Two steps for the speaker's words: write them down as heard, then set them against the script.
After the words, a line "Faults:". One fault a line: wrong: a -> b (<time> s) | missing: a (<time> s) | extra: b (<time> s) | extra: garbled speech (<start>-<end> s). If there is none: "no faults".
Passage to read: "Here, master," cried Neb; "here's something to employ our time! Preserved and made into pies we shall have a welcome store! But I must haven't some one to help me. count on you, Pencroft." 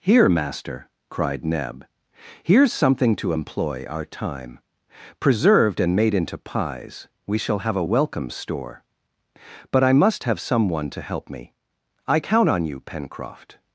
"Here, master," cried Neb; "here's something to employ our time! Preserved and made into pies we shall have a welcome store! But I must have some one to help me. I count on you, Pencroft."
Faults:
wrong: haven't -> have (10.2 s)
extra: I (12.1 s)